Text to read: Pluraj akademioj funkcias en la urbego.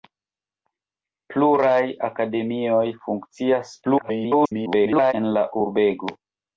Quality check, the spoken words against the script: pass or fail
fail